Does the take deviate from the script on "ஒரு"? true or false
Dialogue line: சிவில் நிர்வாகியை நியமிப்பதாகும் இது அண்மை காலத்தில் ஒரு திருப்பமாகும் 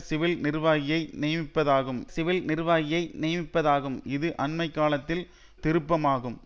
true